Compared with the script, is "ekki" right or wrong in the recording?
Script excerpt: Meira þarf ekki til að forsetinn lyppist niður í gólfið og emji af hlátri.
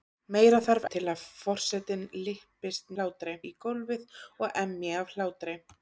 wrong